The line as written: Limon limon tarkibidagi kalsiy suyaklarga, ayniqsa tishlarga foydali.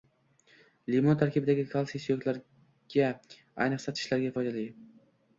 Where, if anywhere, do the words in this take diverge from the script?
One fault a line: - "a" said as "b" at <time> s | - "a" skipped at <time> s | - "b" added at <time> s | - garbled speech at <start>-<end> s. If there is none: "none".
- "limon" skipped at 1.2 s